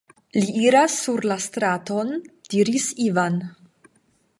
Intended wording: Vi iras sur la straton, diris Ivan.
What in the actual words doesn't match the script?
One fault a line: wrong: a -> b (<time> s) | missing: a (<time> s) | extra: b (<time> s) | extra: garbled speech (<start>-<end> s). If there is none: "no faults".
wrong: Vi -> Li (0.4 s)